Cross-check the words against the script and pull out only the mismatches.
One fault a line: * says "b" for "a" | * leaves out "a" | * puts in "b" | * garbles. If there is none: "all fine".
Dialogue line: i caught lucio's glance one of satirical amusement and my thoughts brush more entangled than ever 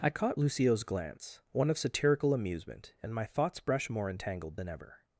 all fine